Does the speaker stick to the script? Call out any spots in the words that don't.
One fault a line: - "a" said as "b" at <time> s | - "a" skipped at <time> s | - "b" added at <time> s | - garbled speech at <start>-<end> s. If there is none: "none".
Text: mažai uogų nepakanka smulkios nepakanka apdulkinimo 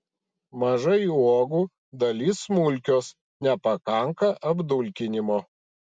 - "nepakanka" said as "dalis" at 2.0 s